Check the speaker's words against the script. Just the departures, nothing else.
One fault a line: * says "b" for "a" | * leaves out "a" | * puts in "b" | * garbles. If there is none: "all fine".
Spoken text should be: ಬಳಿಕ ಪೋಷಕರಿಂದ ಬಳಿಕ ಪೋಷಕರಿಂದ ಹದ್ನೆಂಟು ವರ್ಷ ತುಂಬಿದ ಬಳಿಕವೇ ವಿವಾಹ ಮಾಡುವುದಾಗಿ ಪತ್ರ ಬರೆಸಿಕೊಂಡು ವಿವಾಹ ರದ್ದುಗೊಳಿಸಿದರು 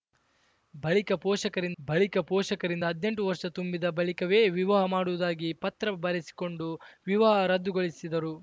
all fine